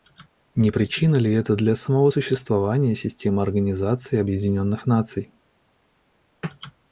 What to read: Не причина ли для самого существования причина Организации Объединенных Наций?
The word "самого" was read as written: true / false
true